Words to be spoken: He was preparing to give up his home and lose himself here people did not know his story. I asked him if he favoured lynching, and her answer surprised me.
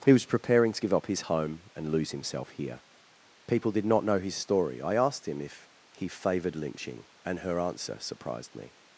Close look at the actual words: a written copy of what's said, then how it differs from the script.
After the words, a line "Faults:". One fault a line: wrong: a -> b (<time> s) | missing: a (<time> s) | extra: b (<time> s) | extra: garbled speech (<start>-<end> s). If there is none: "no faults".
He was preparing to give up his home and lose himself here people did not know his story. I asked him if he favoured lynching, and her answer surprised me.
Faults:
no faults